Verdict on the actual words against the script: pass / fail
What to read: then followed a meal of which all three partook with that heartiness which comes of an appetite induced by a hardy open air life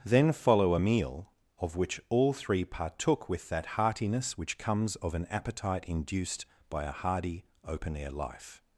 fail